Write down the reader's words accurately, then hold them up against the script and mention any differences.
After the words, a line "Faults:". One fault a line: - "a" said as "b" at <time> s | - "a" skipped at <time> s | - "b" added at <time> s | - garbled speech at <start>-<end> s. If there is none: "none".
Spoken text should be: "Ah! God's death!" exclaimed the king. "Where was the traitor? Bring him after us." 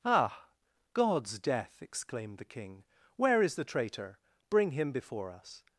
"Ah! God's death!" exclaimed the king. "Where is the traitor? Bring him before us."
Faults:
- "was" said as "is" at 3.4 s
- "after" said as "before" at 4.9 s